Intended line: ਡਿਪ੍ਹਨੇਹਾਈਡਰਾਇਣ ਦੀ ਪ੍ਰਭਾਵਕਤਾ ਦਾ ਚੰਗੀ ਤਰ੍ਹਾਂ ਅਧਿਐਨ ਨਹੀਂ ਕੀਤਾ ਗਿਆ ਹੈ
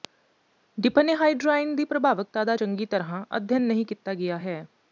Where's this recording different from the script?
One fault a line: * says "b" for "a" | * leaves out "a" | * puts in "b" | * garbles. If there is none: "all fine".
all fine